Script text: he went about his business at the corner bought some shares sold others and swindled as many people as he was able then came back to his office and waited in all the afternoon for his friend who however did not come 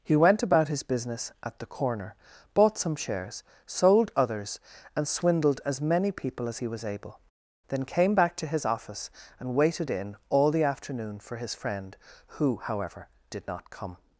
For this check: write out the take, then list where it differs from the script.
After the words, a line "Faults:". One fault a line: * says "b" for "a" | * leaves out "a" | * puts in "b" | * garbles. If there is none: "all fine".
he went about his business at the corner bought some shares sold others and swindled as many people as he was able then came back to his office and waited in all the afternoon for his friend who however did not come
Faults:
all fine